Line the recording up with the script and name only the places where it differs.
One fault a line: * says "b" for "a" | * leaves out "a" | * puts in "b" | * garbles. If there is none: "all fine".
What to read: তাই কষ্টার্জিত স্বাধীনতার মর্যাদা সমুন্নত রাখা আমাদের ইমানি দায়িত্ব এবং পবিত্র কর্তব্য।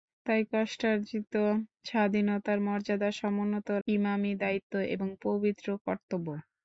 * leaves out "রাখা আমাদের"